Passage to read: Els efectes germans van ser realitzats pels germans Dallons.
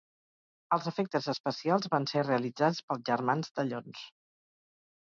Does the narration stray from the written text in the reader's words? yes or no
yes